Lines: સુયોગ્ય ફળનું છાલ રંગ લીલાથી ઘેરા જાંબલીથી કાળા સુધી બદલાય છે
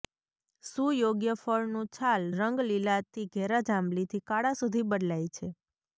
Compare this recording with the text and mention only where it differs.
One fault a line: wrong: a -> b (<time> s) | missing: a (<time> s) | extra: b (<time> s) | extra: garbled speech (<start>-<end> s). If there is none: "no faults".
no faults